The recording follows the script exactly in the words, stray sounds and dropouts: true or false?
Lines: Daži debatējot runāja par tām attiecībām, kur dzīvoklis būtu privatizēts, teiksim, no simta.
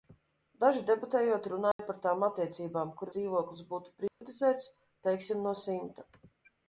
false